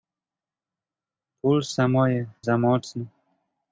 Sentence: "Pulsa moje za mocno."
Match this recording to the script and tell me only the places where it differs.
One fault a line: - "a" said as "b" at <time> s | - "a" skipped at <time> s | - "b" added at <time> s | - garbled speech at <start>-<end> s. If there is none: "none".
none